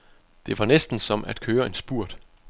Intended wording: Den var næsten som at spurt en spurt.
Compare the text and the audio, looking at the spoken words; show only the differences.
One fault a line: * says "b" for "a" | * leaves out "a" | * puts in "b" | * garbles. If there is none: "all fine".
* says "Det" for "Den"
* says "køre" for "spurt"